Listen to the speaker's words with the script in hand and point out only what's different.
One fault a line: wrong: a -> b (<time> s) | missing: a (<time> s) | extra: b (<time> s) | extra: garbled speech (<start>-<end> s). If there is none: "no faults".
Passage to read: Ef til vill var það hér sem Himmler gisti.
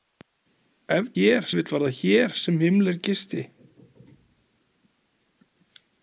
wrong: til -> hér (1.1 s)